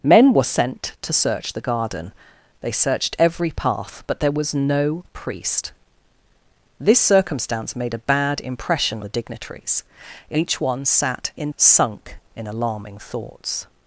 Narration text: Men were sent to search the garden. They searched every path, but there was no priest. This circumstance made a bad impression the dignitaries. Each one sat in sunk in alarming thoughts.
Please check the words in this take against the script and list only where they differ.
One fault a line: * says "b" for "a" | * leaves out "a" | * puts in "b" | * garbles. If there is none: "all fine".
all fine